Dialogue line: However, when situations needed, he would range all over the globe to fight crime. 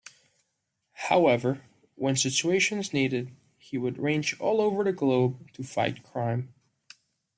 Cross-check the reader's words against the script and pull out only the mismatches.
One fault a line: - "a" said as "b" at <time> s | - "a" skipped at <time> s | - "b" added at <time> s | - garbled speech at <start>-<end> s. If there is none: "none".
none